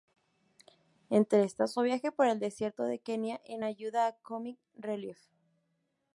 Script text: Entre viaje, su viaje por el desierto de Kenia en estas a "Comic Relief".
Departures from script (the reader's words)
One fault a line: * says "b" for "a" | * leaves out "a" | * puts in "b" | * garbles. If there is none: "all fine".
* says "estas" for "viaje"
* says "ayuda" for "estas"